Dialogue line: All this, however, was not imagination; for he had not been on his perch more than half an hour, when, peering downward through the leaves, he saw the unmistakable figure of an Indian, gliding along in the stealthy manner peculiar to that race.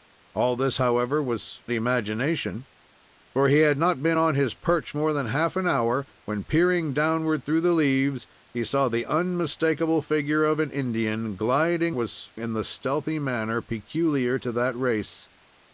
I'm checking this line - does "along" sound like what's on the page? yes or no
no